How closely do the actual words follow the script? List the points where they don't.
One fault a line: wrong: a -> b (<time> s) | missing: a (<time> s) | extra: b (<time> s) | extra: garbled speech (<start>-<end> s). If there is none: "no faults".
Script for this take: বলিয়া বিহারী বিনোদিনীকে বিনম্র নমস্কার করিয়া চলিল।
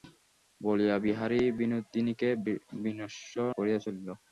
missing: নমস্কার (3.4 s)